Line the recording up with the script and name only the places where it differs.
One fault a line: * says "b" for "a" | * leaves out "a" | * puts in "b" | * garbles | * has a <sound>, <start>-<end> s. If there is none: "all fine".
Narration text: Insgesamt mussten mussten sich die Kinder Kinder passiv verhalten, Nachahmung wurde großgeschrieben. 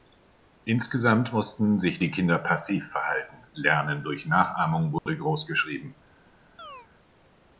* leaves out "mussten"
* leaves out "Kinder"
* puts in "Lernen durch"
* has a dropout, 5.0-5.1 s
* has a chirp, 6.6-6.9 s